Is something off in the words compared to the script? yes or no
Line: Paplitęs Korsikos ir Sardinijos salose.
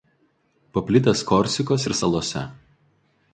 yes